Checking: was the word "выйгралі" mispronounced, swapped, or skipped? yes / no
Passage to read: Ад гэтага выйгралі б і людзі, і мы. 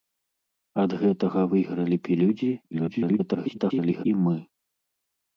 no